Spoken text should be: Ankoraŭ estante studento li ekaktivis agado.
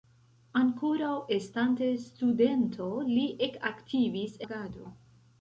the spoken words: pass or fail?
pass